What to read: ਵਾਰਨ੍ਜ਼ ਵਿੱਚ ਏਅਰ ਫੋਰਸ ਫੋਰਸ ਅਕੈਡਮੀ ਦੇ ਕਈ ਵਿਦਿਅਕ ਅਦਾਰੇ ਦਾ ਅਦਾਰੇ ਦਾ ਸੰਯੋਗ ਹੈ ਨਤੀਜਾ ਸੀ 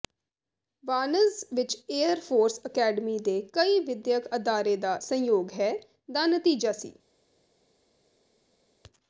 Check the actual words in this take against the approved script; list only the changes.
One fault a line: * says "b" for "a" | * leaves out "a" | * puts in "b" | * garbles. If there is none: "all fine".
* leaves out "ਫੋਰਸ"
* leaves out "ਅਦਾਰੇ ਦਾ"
* puts in "ਦਾ"